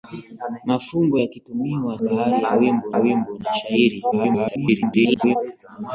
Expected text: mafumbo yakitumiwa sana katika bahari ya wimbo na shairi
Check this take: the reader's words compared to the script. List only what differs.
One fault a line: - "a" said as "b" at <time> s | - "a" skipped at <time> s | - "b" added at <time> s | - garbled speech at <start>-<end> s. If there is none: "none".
- "sana katika" skipped at 2.0 s
- "wimbo" added at 3.0 s
- garbled speech at 4.1-5.4 s